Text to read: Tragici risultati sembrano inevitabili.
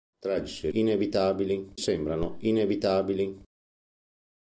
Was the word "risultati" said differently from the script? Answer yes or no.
yes